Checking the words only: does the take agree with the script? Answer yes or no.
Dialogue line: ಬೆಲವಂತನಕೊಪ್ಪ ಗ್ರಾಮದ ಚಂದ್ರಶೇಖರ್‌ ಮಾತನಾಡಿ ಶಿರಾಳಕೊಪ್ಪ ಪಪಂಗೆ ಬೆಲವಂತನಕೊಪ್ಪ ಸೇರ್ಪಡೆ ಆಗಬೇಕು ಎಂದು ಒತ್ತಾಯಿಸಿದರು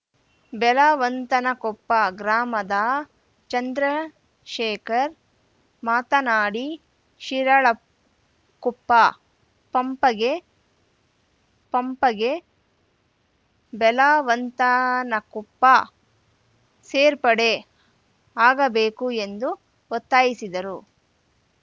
no